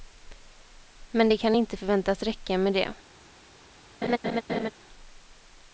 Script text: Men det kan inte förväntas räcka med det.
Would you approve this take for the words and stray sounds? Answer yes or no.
no